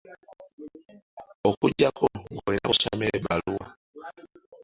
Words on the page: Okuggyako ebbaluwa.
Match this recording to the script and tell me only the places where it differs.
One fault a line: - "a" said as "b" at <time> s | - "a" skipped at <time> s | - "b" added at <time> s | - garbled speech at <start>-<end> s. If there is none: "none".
- "ng'olina b'osomera" added at 2.3 s